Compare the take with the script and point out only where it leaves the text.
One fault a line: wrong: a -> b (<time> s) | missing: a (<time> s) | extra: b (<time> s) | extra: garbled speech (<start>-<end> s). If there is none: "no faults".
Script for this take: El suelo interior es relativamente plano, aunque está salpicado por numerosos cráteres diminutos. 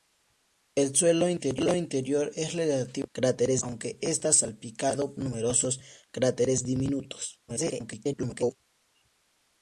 wrong: plano -> cráteres (3.1 s)
missing: por (5.2 s)
extra: garbled speech (7.5-8.6 s)